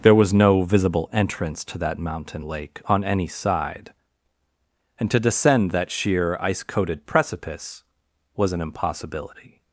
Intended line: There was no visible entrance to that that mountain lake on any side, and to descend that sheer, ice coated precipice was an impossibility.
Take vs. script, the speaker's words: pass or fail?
fail